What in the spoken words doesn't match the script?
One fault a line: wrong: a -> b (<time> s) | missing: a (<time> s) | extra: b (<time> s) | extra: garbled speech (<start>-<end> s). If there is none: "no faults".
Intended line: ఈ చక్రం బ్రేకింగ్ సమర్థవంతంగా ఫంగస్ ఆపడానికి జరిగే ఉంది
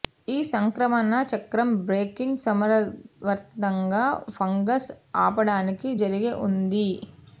extra: సంక్రమణ (0.5 s)